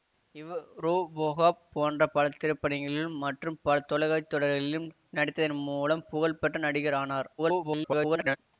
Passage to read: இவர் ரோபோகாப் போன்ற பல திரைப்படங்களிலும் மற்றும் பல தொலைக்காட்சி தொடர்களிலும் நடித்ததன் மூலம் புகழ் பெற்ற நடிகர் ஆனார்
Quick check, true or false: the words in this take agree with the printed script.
false